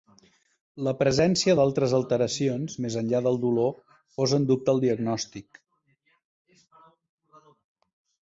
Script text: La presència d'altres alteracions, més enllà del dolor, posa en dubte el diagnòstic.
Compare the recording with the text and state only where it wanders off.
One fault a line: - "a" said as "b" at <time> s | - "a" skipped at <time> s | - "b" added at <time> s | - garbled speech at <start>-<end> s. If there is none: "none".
none